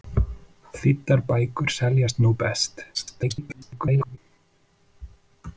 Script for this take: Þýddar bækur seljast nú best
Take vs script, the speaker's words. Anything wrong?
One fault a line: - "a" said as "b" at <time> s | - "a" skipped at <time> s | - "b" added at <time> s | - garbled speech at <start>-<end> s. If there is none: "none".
- garbled speech at 2.9-4.2 s